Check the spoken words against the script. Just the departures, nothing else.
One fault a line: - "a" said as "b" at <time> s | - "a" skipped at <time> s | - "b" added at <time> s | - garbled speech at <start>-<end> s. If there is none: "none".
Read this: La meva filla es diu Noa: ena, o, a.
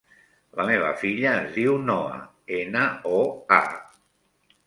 none